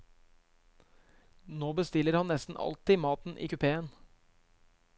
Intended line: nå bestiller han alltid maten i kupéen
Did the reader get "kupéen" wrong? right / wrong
right